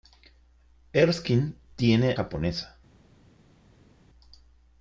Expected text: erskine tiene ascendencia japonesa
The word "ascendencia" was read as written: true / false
false